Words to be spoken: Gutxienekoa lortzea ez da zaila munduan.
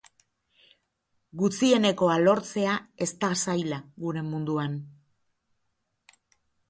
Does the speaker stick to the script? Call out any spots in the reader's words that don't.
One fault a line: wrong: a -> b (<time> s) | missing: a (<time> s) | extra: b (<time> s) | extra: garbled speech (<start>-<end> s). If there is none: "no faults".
extra: gure (4.1 s)